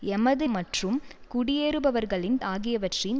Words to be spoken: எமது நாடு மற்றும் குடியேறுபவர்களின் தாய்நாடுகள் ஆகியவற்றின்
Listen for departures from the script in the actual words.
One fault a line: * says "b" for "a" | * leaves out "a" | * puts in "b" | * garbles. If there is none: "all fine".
* leaves out "நாடு"
* leaves out "தாய்நாடுகள்"